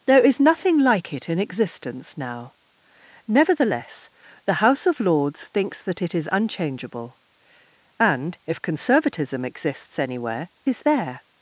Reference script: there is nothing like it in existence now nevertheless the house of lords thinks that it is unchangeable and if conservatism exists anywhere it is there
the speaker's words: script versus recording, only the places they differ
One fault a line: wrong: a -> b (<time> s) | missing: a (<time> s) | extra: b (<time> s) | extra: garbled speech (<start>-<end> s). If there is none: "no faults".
missing: it (10.5 s)